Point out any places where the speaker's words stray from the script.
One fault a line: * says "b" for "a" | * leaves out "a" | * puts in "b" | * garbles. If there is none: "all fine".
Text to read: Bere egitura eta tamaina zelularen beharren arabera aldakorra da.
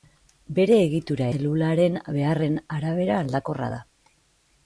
* leaves out "eta tamaina"